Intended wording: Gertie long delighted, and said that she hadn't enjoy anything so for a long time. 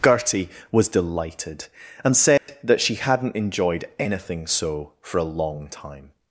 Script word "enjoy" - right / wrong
wrong